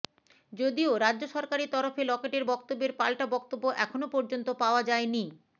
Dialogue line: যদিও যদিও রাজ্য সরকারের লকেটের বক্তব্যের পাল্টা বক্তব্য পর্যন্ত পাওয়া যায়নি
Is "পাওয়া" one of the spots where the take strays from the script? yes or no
no